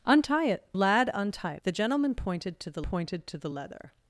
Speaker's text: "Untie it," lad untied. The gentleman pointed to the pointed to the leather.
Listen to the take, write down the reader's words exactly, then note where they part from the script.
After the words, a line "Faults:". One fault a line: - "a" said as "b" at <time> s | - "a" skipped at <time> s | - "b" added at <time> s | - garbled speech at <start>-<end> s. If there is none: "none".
"Untie it," lad untied. The gentleman pointed to the pointed to the leather.
Faults:
none